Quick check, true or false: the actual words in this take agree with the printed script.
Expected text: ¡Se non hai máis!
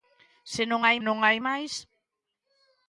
false